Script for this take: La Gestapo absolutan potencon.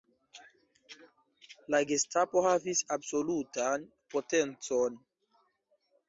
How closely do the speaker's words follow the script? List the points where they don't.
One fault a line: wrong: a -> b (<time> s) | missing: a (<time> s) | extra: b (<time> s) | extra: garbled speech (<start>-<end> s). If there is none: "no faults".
extra: havis (2.5 s)